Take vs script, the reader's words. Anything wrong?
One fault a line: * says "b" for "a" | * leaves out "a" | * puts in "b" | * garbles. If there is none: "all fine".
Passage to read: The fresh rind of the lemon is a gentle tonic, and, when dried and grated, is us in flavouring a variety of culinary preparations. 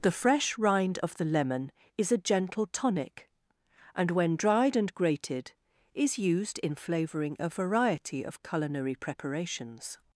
* says "used" for "us"